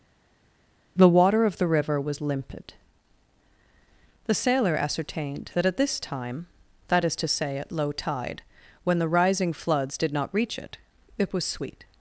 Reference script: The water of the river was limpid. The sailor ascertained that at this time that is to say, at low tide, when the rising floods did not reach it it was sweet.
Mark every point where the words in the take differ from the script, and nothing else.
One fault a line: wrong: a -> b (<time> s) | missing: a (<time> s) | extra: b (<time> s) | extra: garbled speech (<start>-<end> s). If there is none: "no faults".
no faults